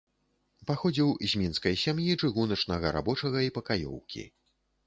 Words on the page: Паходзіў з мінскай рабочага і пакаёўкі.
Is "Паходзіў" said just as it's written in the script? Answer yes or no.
yes